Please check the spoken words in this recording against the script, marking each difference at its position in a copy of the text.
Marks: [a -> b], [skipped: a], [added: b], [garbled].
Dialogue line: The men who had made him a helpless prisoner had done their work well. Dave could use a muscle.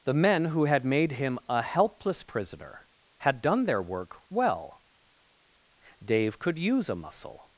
The men who had made him a helpless prisoner had done their work well. Dave could use a muscle.